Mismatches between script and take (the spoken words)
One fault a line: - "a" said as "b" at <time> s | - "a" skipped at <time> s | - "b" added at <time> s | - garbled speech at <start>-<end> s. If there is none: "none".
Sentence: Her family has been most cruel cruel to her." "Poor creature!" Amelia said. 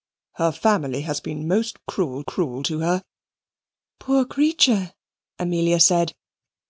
none